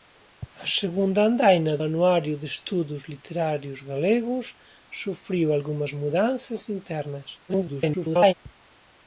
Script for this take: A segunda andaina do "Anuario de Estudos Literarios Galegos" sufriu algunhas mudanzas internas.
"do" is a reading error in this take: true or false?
true